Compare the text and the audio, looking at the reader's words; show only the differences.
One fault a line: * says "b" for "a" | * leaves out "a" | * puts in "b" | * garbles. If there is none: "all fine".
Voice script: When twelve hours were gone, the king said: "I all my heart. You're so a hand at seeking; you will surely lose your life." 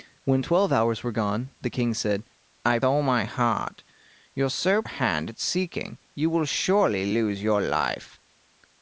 all fine